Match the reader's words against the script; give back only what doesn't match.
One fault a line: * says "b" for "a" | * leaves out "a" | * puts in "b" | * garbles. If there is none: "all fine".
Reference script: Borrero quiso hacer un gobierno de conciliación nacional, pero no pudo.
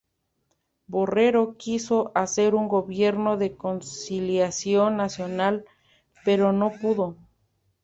all fine